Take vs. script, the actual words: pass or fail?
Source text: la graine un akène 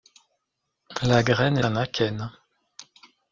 pass